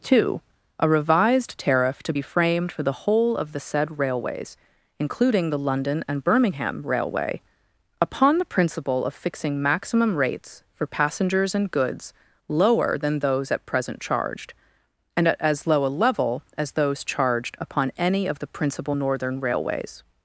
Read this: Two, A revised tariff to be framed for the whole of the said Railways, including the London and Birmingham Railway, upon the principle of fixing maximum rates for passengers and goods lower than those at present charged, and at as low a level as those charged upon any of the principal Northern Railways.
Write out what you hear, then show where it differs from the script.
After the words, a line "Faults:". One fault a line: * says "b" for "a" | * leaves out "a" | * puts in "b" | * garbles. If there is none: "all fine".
Two, A revised tariff to be framed for the whole of the said Railways, including the London and Birmingham Railway, upon the principle of fixing maximum rates for passengers and goods lower than those at present charged, and at as low a level as those charged upon any of the principal Northern Railways.
Faults:
all fine